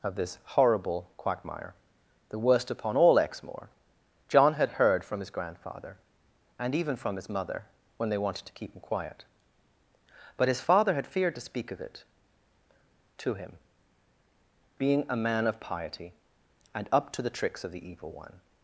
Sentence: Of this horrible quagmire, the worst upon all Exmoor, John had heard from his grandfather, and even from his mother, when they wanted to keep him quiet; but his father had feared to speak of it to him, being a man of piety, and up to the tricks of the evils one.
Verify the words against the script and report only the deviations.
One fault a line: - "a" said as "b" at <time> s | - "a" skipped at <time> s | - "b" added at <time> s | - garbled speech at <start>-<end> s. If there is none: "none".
- "evils" said as "evil" at 17.9 s